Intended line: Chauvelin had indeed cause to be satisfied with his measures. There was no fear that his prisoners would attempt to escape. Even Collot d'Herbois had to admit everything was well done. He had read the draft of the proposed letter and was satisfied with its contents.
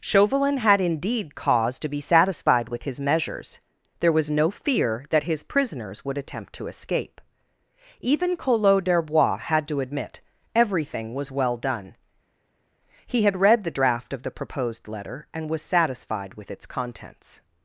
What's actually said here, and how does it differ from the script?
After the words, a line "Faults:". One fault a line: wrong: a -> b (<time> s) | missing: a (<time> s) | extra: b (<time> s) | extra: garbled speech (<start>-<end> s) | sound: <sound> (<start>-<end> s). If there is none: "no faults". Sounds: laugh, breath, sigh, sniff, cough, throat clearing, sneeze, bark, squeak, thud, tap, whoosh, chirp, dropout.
Chauvelin had indeed cause to be satisfied with his measures. There was no fear that his prisoners would attempt to escape. Even Collot d'Herbois had to admit everything was well done. He had read the draft of the proposed letter and was satisfied with its contents.
Faults:
no faults